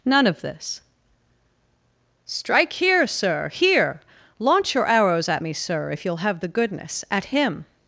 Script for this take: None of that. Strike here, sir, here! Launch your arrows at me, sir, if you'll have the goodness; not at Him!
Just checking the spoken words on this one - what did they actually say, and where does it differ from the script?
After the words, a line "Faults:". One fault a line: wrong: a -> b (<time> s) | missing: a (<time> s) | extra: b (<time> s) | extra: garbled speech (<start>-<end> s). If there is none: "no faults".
None of this. Strike here, sir, here! Launch your arrows at me, sir, if you'll have the goodness; at Him!
Faults:
wrong: that -> this (0.4 s)
missing: not (7.0 s)